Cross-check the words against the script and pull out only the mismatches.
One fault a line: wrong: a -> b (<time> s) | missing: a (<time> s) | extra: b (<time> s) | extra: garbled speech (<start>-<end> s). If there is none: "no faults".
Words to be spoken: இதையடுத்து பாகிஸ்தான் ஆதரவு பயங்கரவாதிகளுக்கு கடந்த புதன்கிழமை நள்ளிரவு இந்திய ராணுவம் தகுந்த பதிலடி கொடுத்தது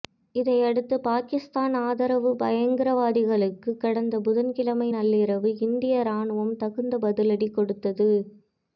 no faults